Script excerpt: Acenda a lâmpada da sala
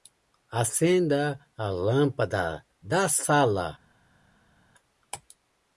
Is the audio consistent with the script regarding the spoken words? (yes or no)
yes